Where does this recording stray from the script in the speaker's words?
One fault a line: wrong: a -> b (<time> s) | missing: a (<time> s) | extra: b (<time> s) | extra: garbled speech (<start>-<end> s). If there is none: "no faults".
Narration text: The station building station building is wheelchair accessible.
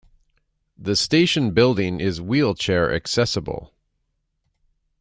missing: station building (2.0 s)